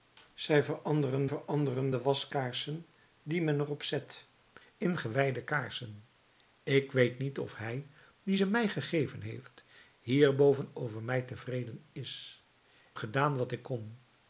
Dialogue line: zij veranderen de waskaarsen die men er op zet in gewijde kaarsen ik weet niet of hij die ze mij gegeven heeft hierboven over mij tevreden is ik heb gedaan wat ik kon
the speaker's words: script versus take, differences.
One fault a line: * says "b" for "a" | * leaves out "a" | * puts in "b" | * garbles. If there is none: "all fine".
* puts in "veranderen"
* leaves out "ik heb"